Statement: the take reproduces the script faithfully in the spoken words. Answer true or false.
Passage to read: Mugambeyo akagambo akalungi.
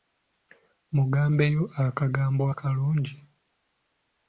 true